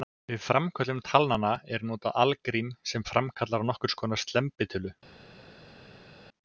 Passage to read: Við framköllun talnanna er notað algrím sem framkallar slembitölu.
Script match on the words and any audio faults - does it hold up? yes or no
no